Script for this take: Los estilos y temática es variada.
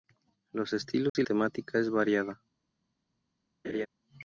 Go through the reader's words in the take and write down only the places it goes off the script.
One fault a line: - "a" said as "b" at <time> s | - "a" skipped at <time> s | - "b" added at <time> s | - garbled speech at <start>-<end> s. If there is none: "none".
none